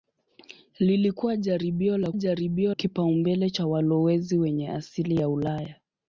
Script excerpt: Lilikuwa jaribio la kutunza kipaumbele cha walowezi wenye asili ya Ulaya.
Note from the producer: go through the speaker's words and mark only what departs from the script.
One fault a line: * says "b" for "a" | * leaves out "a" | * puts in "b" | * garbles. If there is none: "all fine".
* says "jaribio" for "kutunza"